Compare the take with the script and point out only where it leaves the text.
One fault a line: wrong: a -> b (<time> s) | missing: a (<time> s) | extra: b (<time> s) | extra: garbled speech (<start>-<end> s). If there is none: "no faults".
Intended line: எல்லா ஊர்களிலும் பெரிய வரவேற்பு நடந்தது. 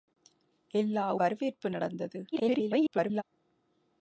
missing: ஊர்களிலும் பெரிய (1.1 s)
extra: garbled speech (2.3-3.2 s)